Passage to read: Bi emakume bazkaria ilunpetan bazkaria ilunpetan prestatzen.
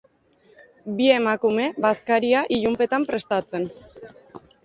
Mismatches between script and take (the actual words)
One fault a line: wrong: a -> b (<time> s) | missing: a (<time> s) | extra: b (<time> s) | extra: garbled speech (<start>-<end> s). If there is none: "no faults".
missing: bazkaria ilunpetan (3.1 s)